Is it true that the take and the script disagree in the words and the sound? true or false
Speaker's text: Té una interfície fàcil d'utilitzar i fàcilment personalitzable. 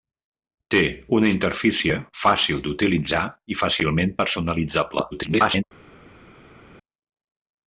true